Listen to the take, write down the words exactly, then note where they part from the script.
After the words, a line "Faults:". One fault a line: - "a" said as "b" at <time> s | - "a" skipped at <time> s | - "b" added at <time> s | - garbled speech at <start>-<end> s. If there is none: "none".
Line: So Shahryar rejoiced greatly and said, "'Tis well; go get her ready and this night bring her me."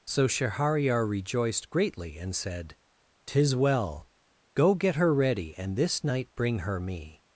So Shahryar rejoiced greatly and said, "'Tis well; go get her ready and this night bring her me."
Faults:
none